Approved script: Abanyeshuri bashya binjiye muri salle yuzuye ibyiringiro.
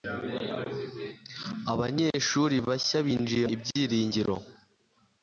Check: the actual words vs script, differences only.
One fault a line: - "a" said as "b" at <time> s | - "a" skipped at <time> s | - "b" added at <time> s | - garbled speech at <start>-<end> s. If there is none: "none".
- "muri salle yuzuye" skipped at 3.5 s